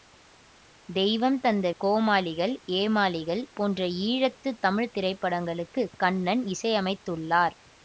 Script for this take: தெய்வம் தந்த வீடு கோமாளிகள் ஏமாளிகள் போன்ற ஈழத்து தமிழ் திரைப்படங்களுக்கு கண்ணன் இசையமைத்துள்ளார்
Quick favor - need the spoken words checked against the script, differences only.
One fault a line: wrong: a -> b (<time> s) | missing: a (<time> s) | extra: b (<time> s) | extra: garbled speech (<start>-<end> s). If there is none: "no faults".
missing: வீடு (1.7 s)